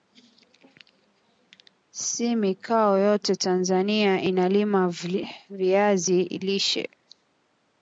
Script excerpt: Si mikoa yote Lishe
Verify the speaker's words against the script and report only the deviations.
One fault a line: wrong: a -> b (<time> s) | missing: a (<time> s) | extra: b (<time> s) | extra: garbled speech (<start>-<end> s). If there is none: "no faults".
extra: Tanzania inalima VIazi (3.4 s)